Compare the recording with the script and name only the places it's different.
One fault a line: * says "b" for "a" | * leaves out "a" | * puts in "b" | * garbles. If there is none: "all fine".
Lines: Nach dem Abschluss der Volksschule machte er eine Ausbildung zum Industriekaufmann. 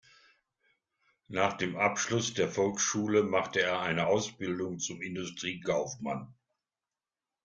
all fine